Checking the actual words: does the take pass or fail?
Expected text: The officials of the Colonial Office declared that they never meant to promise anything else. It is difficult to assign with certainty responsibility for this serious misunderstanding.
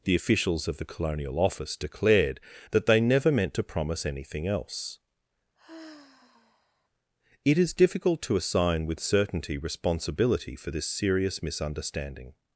pass